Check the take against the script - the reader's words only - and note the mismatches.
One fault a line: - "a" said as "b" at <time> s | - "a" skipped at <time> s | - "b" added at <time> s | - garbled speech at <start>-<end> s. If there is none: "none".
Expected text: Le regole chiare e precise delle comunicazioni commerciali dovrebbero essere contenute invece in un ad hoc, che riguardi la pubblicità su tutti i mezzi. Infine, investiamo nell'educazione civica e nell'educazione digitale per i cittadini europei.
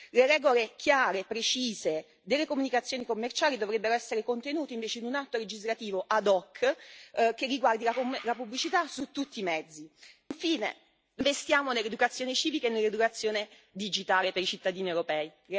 - "atto legislativo" added at 5.2 s